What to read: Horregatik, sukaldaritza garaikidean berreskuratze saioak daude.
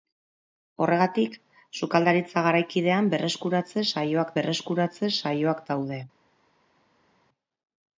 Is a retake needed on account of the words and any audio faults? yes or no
yes